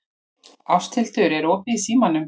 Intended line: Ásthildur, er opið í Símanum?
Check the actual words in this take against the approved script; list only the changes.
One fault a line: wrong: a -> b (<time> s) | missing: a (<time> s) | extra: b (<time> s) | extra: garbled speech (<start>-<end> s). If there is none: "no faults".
no faults